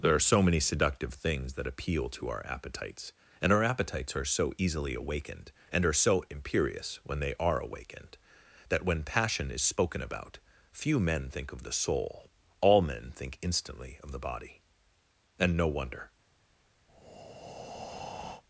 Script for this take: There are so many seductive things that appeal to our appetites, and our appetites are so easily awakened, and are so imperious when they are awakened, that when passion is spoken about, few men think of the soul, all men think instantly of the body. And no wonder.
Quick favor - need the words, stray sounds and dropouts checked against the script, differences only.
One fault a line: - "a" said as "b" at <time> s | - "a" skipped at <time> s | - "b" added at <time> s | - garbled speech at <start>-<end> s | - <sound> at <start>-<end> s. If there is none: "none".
- breath at 16.9-18.4 s